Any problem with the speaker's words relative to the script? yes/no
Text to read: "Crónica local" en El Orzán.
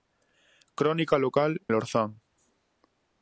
yes